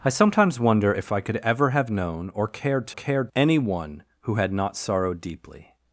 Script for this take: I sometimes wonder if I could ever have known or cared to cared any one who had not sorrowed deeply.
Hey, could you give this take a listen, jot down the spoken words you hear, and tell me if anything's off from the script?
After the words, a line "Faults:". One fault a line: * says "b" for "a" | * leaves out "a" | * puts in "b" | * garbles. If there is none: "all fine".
I sometimes wonder if I could ever have known or cared to cared any one who had not sorrowed deeply.
Faults:
all fine